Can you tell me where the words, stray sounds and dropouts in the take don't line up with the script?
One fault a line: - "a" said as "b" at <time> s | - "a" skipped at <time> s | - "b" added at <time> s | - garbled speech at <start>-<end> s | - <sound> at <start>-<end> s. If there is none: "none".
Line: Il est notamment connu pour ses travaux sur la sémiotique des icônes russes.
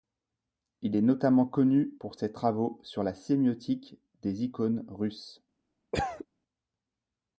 - cough at 5.9-6.3 s